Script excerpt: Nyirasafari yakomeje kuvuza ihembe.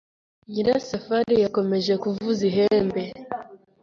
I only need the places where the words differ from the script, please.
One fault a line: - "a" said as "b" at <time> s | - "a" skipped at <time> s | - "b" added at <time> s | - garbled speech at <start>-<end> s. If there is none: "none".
none